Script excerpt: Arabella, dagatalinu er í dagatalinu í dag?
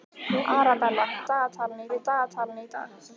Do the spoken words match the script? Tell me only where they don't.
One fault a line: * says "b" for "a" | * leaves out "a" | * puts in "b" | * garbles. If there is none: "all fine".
all fine